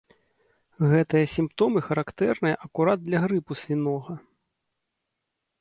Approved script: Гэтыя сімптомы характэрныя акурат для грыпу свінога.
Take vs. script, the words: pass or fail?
pass